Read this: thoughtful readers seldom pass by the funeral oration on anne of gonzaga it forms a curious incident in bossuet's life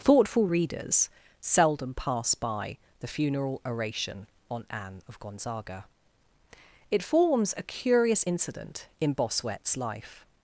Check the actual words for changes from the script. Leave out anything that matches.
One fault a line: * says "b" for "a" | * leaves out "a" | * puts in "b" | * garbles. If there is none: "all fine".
all fine